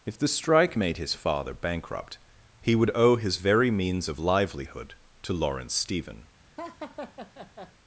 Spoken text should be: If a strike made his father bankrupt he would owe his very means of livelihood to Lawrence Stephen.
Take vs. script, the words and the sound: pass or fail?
fail